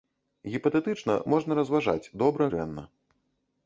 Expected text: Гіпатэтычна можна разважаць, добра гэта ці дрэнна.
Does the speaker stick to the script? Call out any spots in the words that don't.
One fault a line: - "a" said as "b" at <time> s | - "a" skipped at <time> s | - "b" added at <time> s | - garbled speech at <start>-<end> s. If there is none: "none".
- "гэта ці" skipped at 2.5 s